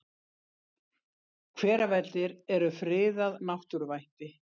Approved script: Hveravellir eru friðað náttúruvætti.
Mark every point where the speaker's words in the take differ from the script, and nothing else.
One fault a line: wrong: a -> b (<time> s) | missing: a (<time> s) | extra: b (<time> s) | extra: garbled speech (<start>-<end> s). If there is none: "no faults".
no faults